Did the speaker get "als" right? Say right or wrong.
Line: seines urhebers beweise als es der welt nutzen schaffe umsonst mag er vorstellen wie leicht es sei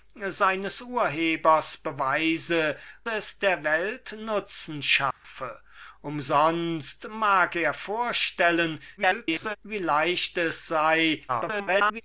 wrong